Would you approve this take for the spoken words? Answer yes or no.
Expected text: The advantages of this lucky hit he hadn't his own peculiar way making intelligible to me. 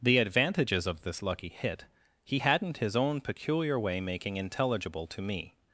yes